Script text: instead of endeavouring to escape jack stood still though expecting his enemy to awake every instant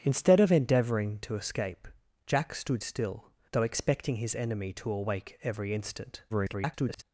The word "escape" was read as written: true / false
true